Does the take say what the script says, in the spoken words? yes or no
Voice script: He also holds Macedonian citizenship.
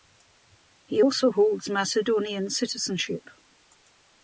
yes